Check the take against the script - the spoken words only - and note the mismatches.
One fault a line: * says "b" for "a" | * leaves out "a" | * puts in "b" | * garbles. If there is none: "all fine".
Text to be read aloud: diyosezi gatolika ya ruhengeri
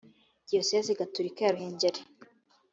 all fine